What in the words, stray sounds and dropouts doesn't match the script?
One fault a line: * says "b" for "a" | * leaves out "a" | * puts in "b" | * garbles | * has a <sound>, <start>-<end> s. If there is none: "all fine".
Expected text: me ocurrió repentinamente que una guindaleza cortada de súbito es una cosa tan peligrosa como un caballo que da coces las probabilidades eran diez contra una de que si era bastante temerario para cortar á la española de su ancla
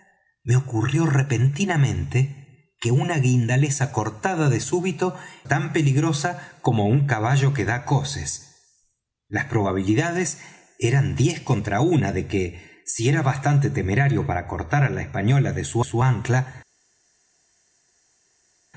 * leaves out "es una cosa"
* puts in "su"